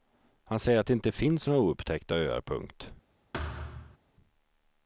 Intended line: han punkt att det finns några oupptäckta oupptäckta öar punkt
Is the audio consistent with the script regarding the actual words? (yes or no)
no